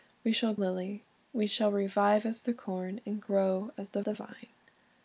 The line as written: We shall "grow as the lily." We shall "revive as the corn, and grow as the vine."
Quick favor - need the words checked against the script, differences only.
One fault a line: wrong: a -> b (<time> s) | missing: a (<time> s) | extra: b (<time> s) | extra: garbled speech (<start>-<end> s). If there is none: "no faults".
missing: grow as the (0.6 s)
extra: the (4.0 s)